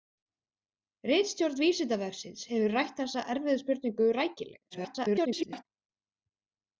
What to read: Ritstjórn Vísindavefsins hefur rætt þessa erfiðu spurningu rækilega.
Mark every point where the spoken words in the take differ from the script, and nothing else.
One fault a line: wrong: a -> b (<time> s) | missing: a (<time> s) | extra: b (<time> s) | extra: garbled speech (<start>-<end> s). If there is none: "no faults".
extra: garbled speech (4.7-5.6 s)